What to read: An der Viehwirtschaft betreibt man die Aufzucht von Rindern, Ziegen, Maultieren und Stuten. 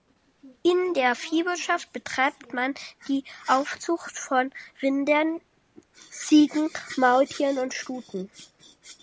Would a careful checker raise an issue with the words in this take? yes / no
yes